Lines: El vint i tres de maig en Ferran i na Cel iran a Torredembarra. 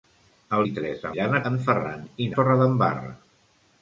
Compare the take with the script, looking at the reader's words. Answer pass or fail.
fail